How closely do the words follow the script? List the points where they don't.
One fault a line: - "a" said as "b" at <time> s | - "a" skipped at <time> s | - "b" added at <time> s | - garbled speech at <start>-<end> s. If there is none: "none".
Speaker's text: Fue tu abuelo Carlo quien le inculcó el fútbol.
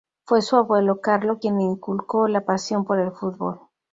- "tu" said as "su" at 0.4 s
- "la pasión por" added at 2.3 s